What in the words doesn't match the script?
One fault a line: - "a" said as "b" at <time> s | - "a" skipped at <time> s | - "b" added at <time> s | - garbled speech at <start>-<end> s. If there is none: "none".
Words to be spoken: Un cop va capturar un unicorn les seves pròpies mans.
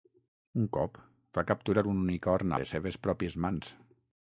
none